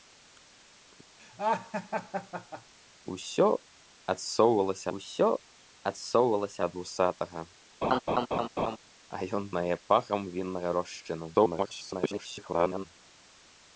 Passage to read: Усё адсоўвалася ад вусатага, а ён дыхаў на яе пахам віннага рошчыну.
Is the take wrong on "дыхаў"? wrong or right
wrong